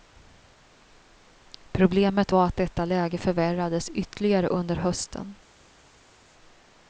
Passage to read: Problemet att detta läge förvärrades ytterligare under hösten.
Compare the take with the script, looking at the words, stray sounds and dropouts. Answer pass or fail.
fail